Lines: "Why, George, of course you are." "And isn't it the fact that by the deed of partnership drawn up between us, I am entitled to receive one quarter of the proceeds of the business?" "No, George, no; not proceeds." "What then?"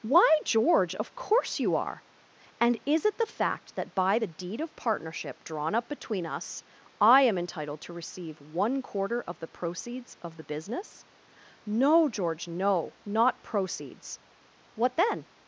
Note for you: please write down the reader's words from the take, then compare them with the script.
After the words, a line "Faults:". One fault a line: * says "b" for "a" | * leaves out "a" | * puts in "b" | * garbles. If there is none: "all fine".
"Why, George, of course you are." "And is it the fact that by the deed of partnership drawn up between us, I am entitled to receive one quarter of the proceeds of the business?" "No, George, no; not proceeds." "What then?"
Faults:
* says "is" for "isn't"